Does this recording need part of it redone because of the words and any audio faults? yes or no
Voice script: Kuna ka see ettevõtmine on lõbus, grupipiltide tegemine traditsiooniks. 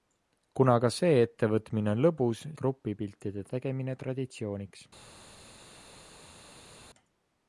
no